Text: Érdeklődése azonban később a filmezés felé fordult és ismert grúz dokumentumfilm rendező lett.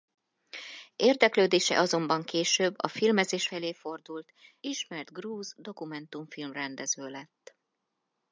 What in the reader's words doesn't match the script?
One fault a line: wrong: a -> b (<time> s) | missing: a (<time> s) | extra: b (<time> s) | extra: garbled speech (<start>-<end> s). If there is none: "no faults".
missing: és (4.3 s)